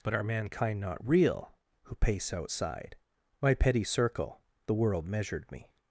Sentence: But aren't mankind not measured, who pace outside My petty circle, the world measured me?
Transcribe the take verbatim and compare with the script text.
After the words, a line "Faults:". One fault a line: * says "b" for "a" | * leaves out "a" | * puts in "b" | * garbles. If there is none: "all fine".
But are mankind not real, who pace outside My petty circle, the world measured me?
Faults:
* says "are" for "aren't"
* says "real" for "measured"